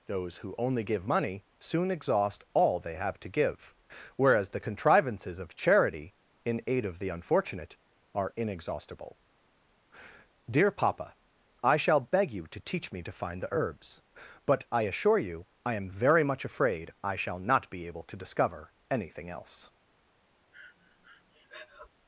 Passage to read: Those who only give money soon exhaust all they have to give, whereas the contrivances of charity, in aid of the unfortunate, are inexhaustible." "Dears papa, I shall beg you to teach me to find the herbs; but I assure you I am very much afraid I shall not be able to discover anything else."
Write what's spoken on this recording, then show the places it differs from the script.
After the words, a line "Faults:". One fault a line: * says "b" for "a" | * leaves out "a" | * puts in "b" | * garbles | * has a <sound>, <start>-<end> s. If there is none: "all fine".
Those who only give money soon exhaust all they have to give, whereas the contrivances of charity, in aid of the unfortunate, are inexhaustible." "Dear papa, I shall beg you to teach me to find the herbs; but I assure you I am very much afraid I shall not be able to discover anything else."
Faults:
* says "Dear" for "Dears"
* has a breath, 20.5-21.9 s